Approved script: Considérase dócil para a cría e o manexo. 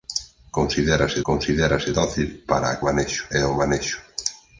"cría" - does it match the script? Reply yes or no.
no